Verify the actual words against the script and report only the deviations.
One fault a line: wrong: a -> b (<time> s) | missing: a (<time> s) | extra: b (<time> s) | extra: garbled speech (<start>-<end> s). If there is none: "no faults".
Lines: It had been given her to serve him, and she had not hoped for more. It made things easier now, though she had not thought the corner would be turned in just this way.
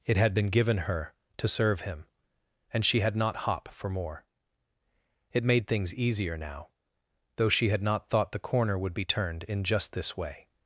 wrong: hoped -> hop (3.4 s)